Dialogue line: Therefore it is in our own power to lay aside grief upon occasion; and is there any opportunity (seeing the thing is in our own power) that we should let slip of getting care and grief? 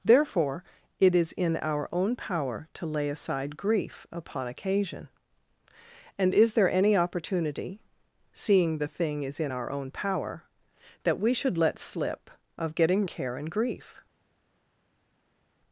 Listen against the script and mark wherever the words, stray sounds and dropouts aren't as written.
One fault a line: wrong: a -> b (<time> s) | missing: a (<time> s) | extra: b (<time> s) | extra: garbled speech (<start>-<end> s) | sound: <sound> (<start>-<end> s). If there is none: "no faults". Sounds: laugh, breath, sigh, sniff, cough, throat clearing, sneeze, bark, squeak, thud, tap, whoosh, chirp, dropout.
no faults